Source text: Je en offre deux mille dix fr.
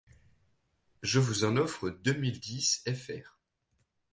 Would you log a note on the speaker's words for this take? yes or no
yes